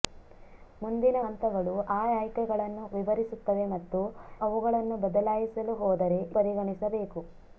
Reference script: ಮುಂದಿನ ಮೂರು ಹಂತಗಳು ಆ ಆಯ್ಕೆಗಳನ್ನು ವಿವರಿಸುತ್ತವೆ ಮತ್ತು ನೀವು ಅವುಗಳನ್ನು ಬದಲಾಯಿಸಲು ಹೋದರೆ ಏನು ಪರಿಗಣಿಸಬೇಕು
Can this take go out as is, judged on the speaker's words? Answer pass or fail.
fail